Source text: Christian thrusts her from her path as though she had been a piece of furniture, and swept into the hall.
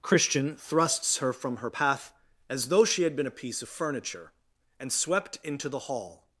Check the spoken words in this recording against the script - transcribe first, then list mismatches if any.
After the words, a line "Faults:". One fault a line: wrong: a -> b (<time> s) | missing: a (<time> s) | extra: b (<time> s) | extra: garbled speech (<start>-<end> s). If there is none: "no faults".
Christian thrusts her from her path as though she had been a piece of furniture, and swept into the hall.
Faults:
no faults